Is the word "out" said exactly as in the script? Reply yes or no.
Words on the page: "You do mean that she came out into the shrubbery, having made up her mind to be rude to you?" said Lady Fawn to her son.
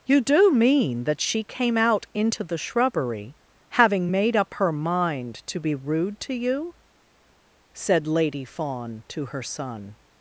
yes